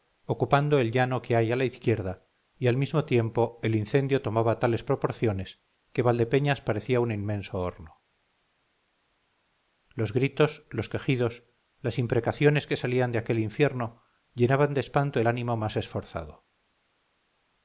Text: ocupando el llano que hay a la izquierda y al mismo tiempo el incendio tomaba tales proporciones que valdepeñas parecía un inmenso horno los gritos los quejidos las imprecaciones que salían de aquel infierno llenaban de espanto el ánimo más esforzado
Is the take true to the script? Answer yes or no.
yes